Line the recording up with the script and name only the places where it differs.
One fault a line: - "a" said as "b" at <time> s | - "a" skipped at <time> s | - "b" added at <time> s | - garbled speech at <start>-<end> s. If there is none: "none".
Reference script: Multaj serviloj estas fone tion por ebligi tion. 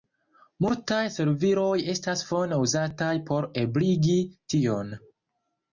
- "tion" said as "uzataj" at 2.7 s